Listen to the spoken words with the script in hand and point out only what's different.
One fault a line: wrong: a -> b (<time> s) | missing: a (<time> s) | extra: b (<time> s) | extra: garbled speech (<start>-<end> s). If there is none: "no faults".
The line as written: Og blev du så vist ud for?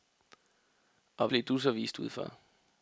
no faults